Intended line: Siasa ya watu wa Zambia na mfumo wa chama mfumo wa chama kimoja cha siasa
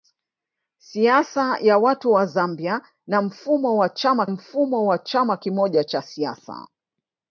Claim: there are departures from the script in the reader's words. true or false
false